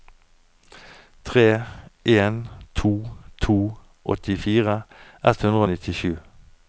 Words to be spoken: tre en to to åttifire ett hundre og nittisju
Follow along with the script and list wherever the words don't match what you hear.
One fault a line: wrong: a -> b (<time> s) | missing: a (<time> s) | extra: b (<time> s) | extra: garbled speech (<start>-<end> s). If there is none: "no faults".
no faults